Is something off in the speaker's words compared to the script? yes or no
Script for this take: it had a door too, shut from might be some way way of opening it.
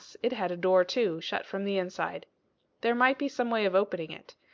yes